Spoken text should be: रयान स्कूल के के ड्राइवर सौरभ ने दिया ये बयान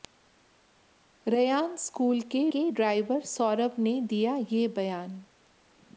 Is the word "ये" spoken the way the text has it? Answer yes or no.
yes